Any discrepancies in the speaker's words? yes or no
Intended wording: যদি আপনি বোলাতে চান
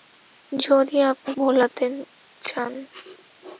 no